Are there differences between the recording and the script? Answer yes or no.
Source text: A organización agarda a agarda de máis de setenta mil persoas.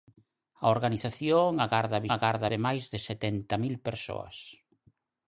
no